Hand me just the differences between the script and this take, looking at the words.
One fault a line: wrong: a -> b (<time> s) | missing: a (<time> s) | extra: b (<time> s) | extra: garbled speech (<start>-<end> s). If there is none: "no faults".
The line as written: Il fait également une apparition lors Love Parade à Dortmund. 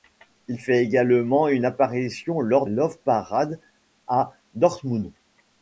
no faults